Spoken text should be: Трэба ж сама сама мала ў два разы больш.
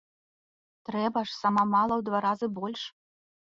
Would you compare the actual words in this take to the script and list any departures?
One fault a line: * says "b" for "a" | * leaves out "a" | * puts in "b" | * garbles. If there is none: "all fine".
* leaves out "сама"